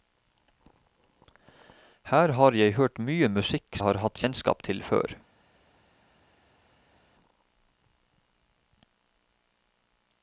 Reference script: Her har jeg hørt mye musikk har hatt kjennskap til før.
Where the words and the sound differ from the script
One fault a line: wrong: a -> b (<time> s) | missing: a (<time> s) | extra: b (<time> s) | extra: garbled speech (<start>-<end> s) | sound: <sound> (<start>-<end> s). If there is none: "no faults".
no faults